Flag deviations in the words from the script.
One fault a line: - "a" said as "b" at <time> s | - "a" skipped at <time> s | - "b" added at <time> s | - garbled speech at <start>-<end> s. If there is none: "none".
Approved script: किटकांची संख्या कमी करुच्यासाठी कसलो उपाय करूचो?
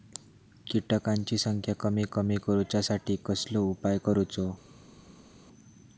- "कमी" added at 2.1 s